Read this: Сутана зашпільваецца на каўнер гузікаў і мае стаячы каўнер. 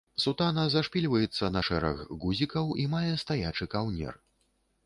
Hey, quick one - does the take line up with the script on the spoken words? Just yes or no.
no